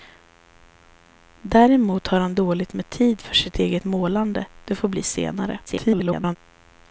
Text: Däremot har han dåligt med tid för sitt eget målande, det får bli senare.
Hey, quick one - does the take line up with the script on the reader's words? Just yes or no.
no